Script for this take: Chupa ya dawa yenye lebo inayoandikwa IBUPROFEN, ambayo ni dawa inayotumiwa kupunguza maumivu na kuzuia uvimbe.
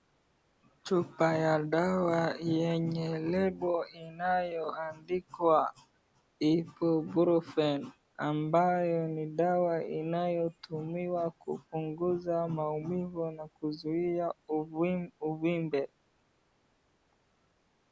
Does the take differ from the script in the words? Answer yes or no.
no